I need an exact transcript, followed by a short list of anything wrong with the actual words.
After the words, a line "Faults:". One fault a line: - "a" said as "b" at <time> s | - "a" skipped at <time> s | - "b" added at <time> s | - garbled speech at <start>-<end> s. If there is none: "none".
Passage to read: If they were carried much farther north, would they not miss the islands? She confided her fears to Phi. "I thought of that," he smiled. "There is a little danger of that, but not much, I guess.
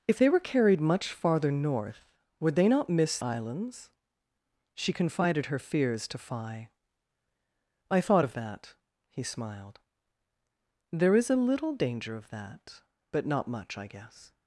If they were carried much farther north, would they not miss islands? She confided her fears to Phi. "I thought of that," he smiled. "There is a little danger of that, but not much, I guess.
Faults:
- "the" skipped at 3.2 s